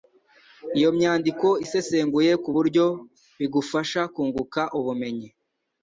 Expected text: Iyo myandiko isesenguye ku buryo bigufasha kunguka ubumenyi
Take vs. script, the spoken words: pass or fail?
pass